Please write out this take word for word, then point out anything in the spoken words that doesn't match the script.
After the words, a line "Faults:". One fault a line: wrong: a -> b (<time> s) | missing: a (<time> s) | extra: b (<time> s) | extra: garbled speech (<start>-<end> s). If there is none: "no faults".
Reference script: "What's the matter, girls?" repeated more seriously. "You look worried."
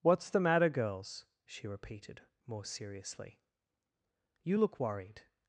"What's the matter, girls?" she repeated more seriously. "You look worried."
Faults:
extra: she (1.4 s)